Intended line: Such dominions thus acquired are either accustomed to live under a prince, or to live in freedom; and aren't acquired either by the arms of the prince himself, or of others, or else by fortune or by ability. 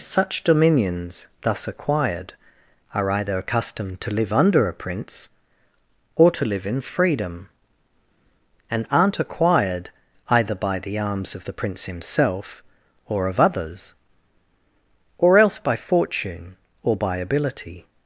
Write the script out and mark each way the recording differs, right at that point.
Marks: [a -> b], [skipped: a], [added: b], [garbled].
Such dominions thus acquired are either accustomed to live under a prince, or to live in freedom; and aren't acquired either by the arms of the prince himself, or of others, or else by fortune or by ability.